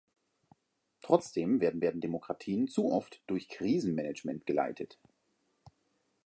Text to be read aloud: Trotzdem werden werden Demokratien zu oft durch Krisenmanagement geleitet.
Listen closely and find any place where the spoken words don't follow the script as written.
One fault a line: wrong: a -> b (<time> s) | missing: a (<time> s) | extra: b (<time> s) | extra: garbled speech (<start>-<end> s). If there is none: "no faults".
no faults